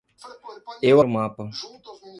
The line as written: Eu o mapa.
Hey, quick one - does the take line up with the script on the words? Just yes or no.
yes